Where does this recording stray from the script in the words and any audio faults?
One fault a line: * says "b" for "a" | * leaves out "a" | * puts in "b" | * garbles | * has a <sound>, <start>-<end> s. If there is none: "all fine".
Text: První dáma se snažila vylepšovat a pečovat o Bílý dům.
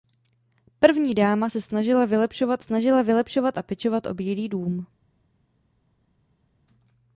* puts in "snažila vylepšovat"